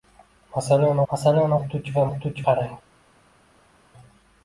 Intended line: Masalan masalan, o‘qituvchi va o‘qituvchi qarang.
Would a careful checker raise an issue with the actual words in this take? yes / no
no